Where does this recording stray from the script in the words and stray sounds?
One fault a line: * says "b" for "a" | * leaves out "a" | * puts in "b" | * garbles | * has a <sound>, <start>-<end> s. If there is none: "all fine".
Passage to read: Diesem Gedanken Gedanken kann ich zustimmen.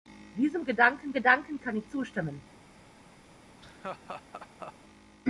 * has a laugh, 3.6-4.7 s